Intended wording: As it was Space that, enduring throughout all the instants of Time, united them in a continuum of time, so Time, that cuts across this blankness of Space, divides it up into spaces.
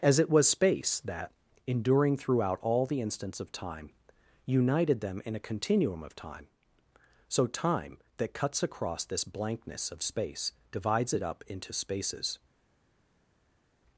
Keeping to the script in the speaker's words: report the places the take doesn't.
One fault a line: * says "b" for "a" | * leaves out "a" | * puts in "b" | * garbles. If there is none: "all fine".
all fine